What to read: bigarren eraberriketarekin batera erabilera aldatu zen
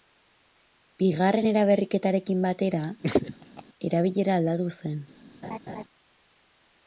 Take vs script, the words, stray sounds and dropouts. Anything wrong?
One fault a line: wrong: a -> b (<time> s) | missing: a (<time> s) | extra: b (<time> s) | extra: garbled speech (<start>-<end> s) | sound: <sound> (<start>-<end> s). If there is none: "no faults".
sound: laugh (3.0-3.6 s)
sound: laugh (5.4-5.8 s)